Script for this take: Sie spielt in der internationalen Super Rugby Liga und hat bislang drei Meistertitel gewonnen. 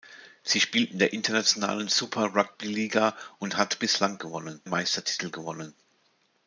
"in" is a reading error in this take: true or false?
false